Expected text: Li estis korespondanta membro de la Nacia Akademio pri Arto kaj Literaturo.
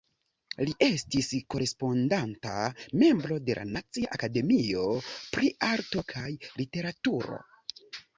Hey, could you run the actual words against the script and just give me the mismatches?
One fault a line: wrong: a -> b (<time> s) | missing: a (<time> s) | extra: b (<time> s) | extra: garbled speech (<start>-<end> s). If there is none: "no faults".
no faults